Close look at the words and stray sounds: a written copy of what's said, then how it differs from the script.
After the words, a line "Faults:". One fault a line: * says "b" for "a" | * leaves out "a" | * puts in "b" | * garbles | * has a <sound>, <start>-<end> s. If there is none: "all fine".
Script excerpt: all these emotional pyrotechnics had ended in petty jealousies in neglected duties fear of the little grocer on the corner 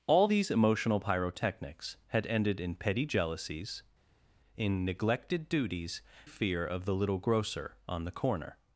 all these emotional pyrotechnics had ended in petty jealousies in neglected duties fear of the little grocer on the corner
Faults:
all fine